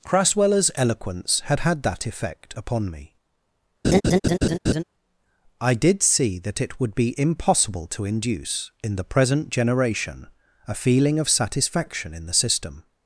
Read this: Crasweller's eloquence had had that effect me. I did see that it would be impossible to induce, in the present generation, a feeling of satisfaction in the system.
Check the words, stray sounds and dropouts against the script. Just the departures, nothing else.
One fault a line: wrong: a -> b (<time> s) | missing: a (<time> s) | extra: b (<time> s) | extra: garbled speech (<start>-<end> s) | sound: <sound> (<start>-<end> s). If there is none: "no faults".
extra: upon (2.5 s)
sound: laugh (3.8-4.8 s)